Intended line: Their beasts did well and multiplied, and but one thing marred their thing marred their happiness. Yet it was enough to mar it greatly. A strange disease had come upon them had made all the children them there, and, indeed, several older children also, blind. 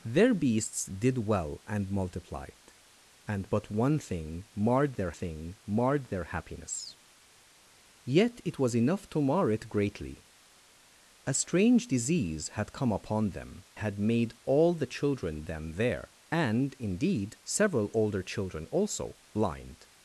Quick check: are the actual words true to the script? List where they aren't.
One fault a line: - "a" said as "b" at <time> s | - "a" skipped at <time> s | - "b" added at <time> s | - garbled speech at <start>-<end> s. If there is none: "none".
none